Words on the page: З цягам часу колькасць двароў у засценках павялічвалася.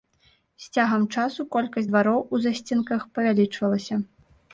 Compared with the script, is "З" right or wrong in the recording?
right